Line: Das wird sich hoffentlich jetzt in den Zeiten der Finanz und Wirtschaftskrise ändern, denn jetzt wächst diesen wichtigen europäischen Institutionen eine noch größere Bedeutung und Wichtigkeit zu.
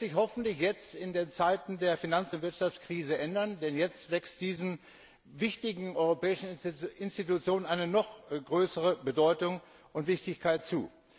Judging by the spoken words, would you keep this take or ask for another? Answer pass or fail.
pass